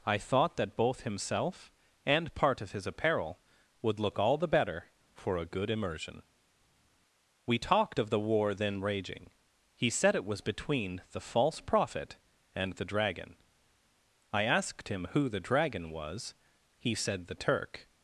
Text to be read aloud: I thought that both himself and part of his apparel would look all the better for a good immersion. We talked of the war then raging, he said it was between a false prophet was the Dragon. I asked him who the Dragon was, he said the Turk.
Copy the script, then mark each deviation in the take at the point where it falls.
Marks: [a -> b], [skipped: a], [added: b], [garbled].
I thought that both himself and part of his apparel would look all the better for a good immersion. We talked of the war then raging, he said it was between [a -> the] false prophet [was -> and] the Dragon. I asked him who the Dragon was, he said the Turk.